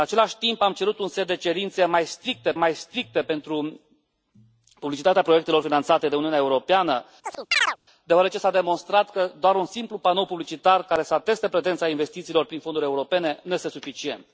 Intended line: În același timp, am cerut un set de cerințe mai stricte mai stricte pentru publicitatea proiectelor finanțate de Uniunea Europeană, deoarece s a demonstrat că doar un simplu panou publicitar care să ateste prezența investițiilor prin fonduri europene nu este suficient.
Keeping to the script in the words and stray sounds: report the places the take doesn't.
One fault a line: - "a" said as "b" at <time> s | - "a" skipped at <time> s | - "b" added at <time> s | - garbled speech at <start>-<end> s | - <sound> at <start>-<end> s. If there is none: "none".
- chirp at 7.2-7.8 s